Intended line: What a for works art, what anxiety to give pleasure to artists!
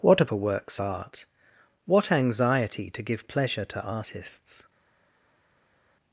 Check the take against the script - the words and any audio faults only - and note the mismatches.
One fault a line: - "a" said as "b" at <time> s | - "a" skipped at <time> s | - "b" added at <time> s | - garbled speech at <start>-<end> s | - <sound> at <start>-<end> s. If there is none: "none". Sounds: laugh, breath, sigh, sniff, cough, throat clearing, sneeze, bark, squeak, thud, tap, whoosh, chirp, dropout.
none